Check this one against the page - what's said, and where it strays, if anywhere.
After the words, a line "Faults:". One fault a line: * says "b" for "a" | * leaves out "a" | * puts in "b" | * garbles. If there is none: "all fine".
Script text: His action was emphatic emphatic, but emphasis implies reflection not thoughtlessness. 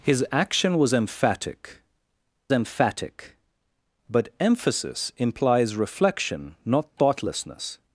His action was emphatic emphatic, but emphasis implies reflection not thoughtlessness.
Faults:
all fine